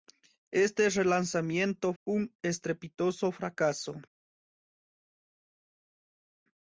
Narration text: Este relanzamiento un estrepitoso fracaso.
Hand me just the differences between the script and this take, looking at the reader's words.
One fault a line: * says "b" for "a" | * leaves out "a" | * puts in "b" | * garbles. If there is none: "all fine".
all fine